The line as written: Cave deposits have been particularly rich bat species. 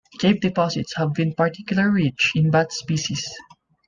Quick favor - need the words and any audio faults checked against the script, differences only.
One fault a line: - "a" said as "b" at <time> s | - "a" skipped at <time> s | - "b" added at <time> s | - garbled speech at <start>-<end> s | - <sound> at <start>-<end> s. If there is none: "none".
- "in" added at 2.3 s